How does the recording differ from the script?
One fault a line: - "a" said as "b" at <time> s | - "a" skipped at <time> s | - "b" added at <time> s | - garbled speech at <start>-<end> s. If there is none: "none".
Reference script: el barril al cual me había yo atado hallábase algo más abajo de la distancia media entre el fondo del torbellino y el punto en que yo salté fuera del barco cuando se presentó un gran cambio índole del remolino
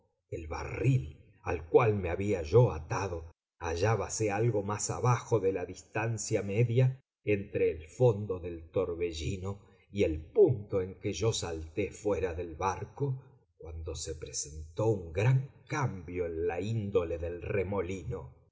- "en la" added at 16.2 s